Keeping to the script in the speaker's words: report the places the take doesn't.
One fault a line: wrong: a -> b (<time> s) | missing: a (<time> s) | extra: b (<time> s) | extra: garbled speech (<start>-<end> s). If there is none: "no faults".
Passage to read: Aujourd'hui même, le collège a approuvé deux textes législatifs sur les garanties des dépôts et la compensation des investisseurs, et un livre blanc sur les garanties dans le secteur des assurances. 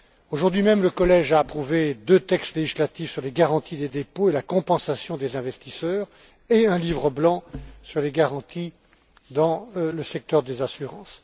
no faults